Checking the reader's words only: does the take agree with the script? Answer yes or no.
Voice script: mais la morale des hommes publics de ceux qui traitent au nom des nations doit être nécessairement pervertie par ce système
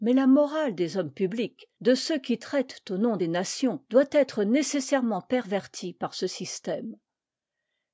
yes